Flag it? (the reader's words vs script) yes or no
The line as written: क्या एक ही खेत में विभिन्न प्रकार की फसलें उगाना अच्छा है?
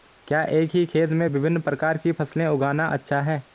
no